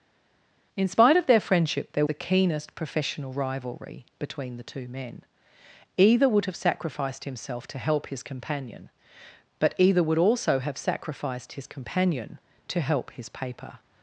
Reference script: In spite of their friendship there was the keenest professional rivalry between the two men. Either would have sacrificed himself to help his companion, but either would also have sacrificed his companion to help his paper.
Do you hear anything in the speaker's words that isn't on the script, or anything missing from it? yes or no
yes